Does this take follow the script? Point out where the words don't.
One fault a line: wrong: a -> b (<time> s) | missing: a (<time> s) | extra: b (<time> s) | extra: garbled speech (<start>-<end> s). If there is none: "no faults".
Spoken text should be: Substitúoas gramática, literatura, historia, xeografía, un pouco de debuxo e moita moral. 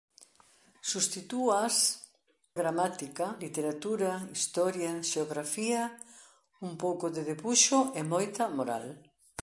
no faults